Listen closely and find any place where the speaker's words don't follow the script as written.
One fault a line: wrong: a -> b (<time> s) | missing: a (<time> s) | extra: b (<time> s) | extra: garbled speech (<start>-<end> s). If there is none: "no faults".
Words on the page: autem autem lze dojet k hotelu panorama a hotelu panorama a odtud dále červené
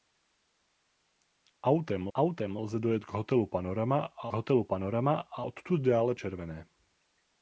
no faults